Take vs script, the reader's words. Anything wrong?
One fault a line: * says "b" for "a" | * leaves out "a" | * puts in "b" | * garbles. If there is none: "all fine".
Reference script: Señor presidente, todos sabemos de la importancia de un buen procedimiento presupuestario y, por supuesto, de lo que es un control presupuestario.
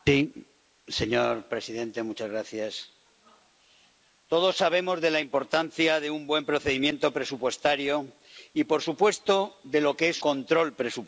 * leaves out "un"